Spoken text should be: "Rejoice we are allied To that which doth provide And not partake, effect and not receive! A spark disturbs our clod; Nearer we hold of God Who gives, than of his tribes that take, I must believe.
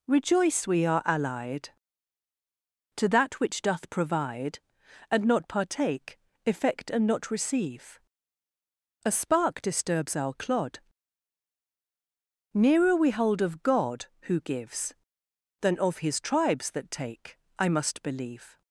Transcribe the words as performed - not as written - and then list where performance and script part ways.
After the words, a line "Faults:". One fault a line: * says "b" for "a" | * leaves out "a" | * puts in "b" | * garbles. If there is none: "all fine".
"Rejoice we are allied To that which doth provide And not partake, effect and not receive! A spark disturbs our clod; Nearer we hold of God Who gives, than of his tribes that take, I must believe.
Faults:
all fine